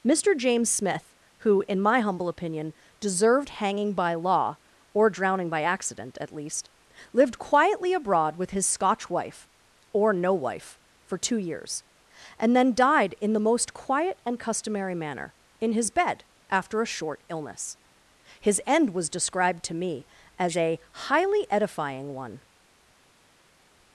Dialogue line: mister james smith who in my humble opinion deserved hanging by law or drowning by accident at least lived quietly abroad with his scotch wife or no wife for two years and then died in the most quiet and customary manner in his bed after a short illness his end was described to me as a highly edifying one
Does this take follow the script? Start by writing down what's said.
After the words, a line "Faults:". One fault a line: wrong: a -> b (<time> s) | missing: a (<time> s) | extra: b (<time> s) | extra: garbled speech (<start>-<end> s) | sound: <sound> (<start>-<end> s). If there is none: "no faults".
mister james smith who in my humble opinion deserved hanging by law or drowning by accident at least lived quietly abroad with his scotch wife or no wife for two years and then died in the most quiet and customary manner in his bed after a short illness his end was described to me as a highly edifying one
Faults:
no faults